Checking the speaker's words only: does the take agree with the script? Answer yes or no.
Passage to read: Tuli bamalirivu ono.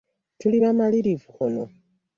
yes